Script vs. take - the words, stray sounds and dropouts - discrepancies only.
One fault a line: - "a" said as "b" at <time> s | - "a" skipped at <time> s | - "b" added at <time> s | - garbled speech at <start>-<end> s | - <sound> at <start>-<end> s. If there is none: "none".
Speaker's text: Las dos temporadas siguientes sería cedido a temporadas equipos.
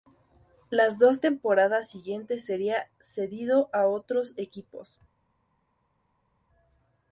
- "temporadas" said as "otros" at 3.9 s